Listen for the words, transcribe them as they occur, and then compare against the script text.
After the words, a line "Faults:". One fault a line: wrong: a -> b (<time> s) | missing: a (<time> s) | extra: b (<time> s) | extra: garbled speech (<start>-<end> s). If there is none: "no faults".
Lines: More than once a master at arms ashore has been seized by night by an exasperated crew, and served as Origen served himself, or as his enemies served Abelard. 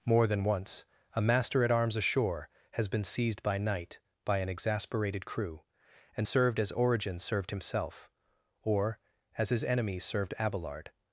More than once a master at arms ashore has been seized by night by an exasperated crew, and served as Origen served himself, or as his enemies served Abelard.
Faults:
no faults